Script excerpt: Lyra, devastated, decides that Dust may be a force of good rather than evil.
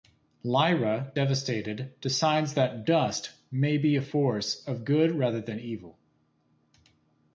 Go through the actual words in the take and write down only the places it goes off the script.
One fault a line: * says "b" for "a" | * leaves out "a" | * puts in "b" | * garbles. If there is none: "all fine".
all fine